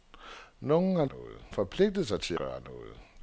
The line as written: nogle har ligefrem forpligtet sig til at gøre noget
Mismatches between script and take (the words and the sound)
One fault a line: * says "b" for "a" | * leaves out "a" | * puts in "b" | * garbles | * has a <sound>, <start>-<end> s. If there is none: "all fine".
* says "noget" for "ligefrem"
* leaves out "at"